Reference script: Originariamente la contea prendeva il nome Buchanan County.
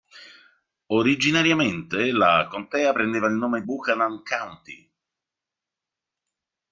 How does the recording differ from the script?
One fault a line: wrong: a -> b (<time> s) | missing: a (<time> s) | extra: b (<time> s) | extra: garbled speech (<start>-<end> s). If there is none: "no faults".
no faults